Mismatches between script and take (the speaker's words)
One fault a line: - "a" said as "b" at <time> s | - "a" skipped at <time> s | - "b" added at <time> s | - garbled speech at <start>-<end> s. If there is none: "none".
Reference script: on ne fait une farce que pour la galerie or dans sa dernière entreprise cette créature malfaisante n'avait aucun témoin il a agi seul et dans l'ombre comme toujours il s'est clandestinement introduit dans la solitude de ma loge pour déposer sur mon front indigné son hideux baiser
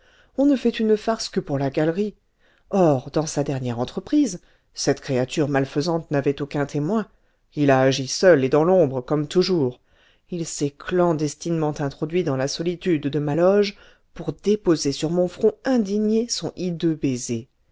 none